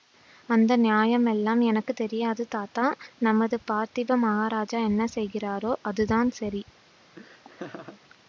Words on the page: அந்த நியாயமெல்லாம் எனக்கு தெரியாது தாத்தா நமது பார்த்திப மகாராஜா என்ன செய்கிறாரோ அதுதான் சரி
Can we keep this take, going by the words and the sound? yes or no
no